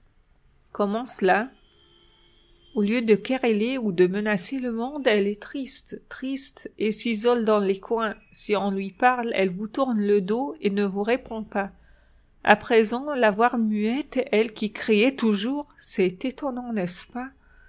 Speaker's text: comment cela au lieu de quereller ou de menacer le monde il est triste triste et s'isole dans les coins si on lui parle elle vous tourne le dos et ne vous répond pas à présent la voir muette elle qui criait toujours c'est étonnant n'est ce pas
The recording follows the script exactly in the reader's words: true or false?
false